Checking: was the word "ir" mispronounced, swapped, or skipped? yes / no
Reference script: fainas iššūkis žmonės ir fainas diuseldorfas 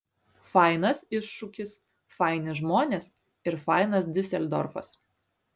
no